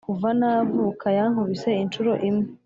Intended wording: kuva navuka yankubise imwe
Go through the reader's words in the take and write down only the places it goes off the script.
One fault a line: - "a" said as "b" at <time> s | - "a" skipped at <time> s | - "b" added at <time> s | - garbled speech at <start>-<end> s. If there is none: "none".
- "inshuro" added at 1.8 s